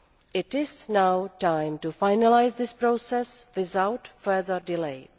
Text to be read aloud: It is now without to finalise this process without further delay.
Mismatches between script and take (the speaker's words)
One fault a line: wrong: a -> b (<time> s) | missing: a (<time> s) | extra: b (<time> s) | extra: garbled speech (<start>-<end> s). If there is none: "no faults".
wrong: without -> time (1.4 s)